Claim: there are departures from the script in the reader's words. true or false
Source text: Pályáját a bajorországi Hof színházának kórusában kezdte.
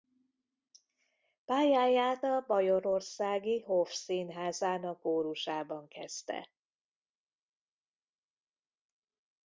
false